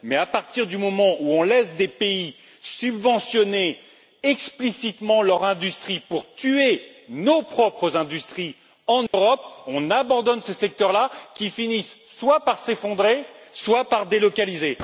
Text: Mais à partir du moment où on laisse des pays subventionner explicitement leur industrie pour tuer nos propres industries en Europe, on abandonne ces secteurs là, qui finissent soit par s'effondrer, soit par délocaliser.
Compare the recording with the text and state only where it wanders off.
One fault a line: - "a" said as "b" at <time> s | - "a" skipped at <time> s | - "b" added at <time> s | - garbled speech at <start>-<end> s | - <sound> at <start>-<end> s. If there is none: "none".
- dropout at 9.1-9.1 s